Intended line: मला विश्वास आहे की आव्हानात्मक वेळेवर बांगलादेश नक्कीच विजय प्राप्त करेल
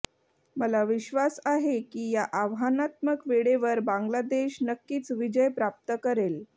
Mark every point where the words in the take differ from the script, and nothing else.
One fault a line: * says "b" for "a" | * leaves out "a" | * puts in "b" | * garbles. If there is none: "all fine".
* puts in "या"